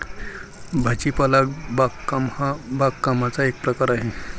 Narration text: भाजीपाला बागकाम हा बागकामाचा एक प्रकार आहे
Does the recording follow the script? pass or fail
pass